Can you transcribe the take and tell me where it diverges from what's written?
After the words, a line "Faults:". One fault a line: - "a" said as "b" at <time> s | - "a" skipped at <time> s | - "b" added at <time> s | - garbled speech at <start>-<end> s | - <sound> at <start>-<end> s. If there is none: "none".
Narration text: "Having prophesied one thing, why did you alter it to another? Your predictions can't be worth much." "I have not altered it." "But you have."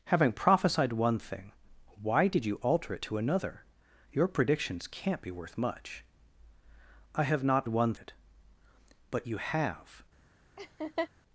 "Having prophesied one thing, why did you alter it to another? Your predictions can't be worth much." "I have not one it." "But you have."
Faults:
- "altered" said as "one" at 7.7 s
- laugh at 10.6-11.1 s